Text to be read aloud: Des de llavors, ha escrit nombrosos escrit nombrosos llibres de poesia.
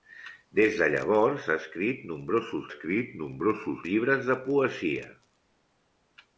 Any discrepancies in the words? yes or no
no